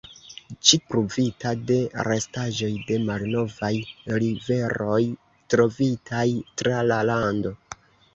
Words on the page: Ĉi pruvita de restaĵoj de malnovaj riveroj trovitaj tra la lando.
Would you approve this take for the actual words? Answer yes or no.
yes